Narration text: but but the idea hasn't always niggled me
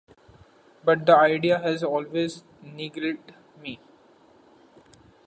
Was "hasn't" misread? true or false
true